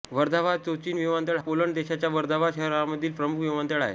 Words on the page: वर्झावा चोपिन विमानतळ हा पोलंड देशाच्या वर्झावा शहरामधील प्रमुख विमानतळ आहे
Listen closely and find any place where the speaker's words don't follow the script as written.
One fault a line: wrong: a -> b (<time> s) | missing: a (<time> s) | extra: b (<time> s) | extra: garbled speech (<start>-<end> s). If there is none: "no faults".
missing: हा (1.4 s)